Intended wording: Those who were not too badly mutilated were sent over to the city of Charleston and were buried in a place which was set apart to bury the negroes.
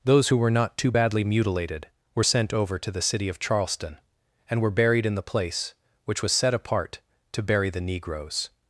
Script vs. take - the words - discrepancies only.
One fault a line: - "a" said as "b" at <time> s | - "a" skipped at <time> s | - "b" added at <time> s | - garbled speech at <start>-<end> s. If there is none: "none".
- "a" said as "the" at 5.1 s